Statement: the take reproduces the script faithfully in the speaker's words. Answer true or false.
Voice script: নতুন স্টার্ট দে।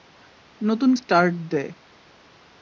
true